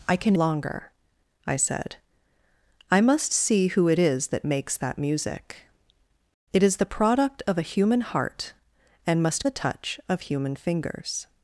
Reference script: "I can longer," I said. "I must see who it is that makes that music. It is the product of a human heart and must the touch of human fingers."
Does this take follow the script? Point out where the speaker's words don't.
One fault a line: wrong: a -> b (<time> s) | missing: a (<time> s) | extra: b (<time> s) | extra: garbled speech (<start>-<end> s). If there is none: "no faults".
no faults